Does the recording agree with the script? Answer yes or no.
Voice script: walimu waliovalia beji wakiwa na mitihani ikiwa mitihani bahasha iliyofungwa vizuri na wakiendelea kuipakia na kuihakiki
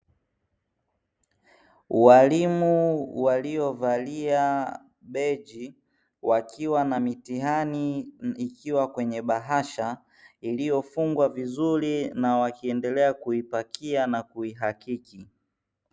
no